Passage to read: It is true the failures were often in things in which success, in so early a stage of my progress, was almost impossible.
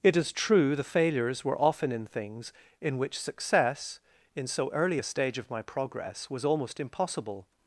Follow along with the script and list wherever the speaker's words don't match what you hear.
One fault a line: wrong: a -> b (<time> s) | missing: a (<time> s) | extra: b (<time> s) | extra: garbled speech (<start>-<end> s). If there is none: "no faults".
no faults